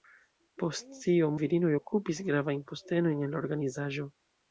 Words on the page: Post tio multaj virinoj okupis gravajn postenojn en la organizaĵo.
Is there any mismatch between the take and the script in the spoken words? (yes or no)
yes